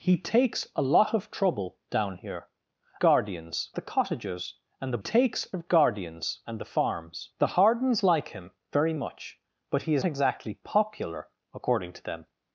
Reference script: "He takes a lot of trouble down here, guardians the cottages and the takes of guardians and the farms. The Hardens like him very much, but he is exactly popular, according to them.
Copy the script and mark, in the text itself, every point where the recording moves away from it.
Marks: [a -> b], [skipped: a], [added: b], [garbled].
"He takes a lot of trouble down here, guardians the cottages and the takes of guardians and the farms. The Hardens like him very much, but he is exactly popular, according to them.